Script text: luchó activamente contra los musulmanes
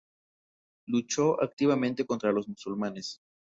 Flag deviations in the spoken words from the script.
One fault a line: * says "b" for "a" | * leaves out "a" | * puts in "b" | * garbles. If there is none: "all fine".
all fine